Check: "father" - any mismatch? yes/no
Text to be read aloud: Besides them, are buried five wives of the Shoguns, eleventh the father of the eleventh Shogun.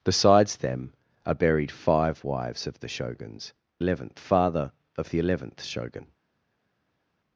no